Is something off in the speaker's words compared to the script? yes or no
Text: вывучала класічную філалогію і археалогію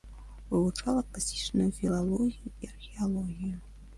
no